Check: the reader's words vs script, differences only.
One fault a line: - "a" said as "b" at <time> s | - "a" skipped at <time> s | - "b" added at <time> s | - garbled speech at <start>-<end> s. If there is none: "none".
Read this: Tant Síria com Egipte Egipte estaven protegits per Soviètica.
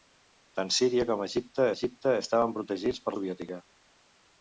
none